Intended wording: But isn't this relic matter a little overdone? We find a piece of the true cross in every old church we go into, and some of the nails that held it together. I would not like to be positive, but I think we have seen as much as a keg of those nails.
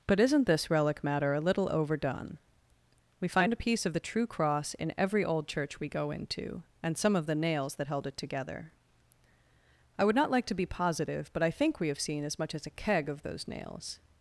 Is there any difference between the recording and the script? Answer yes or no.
no